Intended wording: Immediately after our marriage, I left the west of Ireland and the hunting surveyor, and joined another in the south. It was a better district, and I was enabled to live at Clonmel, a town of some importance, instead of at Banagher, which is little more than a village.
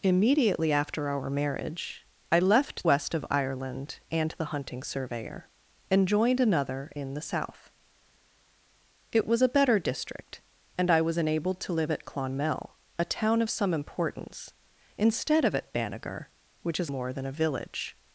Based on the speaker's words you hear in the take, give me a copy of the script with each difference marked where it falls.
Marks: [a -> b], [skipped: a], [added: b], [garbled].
Immediately after our marriage, I left [skipped: the] west of Ireland and the hunting surveyor, and joined another in the south. It was a better district, and I was enabled to live at Clonmel, a town of some importance, instead of at Banagher, which is [skipped: little] more than a village.